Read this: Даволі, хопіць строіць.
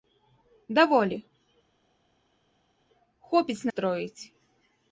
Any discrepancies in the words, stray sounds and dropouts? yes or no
no